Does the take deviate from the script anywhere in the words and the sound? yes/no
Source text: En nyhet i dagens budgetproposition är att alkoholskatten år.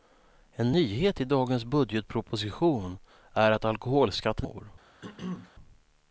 yes